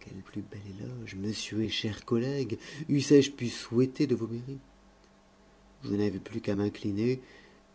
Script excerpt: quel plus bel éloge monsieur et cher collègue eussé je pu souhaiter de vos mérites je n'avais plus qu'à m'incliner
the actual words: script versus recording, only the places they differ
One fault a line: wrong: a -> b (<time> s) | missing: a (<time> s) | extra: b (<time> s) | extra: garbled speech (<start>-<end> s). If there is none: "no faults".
no faults